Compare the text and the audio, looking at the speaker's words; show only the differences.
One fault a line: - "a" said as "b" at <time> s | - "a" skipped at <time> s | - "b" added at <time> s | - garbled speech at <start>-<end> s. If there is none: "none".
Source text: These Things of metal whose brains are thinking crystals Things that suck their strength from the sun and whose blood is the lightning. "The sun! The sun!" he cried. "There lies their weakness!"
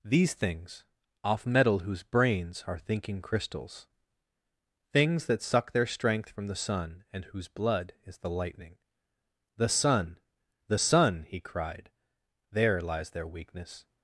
- "of" said as "off" at 1.2 s